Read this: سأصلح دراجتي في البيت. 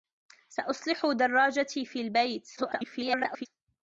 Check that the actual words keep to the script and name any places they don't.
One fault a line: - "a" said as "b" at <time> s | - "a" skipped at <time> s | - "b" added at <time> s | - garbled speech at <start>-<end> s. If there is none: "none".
- garbled speech at 2.6-3.5 s